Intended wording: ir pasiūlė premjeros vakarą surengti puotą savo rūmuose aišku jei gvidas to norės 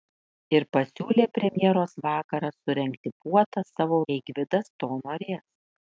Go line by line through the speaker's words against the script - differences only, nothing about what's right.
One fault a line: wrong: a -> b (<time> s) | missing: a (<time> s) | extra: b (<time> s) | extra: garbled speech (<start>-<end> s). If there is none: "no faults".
missing: rūmuose aišku (4.0 s)